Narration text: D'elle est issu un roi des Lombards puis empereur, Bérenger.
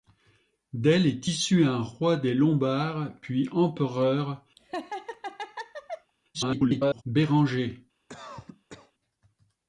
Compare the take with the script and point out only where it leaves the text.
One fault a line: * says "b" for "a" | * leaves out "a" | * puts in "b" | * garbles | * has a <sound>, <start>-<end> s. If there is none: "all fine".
* has a laugh, 4.6-6.1 s
* garbles
* has a cough, 8.1-8.9 s